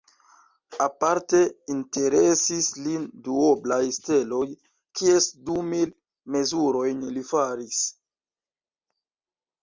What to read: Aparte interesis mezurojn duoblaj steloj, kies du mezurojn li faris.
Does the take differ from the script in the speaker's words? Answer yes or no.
yes